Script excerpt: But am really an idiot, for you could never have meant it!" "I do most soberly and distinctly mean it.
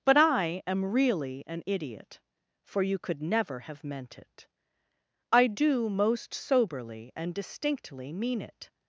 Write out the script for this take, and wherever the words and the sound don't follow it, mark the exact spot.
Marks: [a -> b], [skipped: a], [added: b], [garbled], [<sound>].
But [added: I] am really an idiot, for you could never have meant it!" "I do most soberly and distinctly mean it.